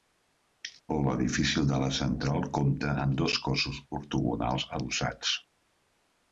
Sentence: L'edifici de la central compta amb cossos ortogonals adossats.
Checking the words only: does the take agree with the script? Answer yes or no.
no